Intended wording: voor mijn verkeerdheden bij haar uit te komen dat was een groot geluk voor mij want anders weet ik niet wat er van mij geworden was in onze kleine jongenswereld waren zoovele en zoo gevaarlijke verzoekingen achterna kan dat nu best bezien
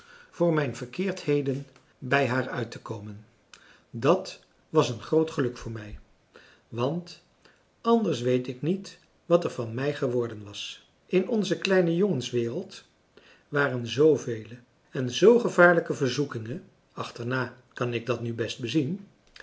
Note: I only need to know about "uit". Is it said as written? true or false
true